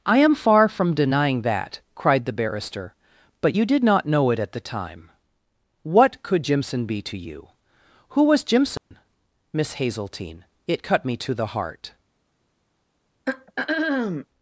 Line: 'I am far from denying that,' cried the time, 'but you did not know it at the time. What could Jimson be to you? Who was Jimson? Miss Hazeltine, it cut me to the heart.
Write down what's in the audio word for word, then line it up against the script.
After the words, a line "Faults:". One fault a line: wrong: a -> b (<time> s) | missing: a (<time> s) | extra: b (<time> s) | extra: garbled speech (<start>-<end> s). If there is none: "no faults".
'I am far from denying that,' cried the barrister, 'but you did not know it at the time. What could Jimson be to you? Who was Jimson? Miss Hazeltine, it cut me to the heart.
Faults:
wrong: time -> barrister (2.3 s)